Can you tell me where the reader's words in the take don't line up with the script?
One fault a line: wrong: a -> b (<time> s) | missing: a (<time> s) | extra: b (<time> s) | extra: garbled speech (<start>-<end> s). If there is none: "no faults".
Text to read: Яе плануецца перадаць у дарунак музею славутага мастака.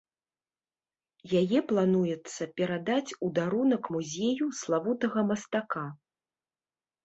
no faults